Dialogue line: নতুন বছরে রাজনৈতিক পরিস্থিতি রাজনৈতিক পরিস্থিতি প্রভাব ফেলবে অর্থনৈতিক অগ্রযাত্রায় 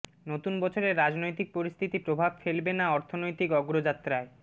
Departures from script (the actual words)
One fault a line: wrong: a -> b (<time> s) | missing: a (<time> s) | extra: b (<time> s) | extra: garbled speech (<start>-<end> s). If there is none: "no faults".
missing: রাজনৈতিক পরিস্থিতি (2.0 s)
extra: না (2.7 s)